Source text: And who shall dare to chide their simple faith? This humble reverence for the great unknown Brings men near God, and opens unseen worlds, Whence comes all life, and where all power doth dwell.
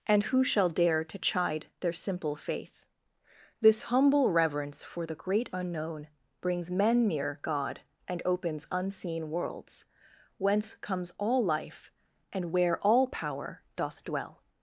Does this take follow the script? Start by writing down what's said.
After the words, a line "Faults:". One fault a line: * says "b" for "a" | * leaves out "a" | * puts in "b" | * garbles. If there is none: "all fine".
And who shall dare to chide their simple faith? This humble reverence for the great unknown Brings men near God, and opens unseen worlds, Whence comes all life, and where all power doth dwell.
Faults:
all fine